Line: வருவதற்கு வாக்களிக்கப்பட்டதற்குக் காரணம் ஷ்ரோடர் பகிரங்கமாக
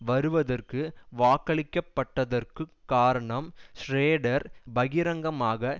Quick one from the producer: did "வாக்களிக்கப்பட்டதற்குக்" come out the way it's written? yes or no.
yes